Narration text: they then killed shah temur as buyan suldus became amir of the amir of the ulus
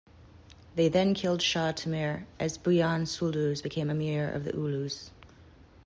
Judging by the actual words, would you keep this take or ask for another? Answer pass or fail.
fail